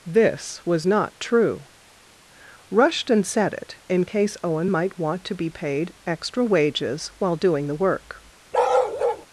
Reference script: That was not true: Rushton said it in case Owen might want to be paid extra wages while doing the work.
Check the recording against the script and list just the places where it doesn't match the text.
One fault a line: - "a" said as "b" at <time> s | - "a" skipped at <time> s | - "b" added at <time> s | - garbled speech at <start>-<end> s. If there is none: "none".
- "That" said as "This" at 0.1 s